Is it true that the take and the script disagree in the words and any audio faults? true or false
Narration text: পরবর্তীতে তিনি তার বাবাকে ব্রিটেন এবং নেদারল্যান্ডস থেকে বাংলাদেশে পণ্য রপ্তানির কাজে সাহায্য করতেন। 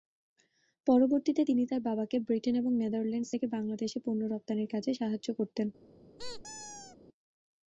true